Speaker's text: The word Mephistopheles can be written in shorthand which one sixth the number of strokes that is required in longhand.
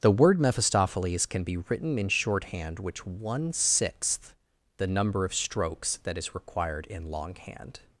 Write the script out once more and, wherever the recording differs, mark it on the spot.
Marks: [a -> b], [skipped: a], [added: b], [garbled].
The word Mephistopheles can be written in shorthand which one sixth the number of strokes that is required in longhand.